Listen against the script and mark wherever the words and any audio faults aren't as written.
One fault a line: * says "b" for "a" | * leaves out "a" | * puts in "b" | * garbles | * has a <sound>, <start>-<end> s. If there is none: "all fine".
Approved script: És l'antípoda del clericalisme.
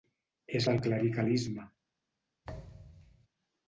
* leaves out "l'antípoda"
* has a thud, 2.4-3.3 s